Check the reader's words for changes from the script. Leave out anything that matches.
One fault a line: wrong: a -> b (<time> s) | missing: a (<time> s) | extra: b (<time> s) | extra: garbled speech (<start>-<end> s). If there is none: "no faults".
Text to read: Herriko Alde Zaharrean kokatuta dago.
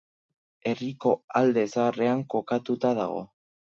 no faults